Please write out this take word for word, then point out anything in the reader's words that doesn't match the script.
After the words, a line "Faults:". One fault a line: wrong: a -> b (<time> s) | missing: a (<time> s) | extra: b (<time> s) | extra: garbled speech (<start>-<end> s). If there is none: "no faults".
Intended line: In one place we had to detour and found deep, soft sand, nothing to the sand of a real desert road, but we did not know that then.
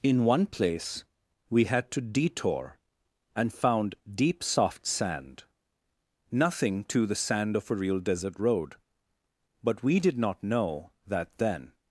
In one place we had to detour and found deep, soft sand, nothing to the sand of a real desert road, but we did not know that then.
Faults:
no faults